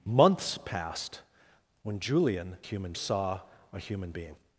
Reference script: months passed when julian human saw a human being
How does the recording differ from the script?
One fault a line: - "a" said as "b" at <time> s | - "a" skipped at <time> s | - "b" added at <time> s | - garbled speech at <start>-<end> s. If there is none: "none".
none